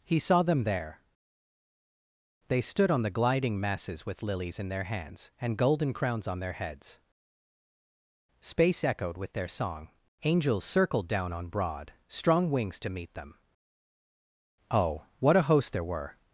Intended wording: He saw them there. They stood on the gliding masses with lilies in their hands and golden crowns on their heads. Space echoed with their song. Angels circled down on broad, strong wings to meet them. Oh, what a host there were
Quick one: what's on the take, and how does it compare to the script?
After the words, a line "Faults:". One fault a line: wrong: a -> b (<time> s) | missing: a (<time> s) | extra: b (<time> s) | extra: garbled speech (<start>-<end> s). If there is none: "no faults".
He saw them there. They stood on the gliding masses with lilies in their hands and golden crowns on their heads. Space echoed with their song. Angels circled down on broad, strong wings to meet them. Oh, what a host there were
Faults:
no faults